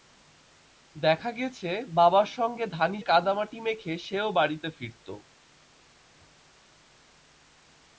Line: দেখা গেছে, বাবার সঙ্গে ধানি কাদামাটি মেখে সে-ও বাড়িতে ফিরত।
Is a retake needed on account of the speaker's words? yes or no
no